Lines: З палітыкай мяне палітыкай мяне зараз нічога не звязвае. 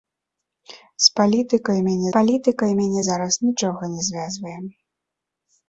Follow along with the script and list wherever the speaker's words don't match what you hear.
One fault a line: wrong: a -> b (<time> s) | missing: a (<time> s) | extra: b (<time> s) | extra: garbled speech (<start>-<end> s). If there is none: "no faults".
no faults